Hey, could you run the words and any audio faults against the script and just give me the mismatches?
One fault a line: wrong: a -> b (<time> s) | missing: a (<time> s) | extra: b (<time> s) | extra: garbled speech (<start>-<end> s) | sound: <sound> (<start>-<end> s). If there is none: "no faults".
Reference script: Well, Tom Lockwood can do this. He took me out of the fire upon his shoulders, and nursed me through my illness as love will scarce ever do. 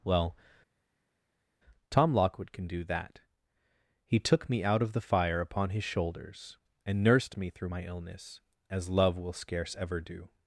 wrong: this -> that (2.8 s)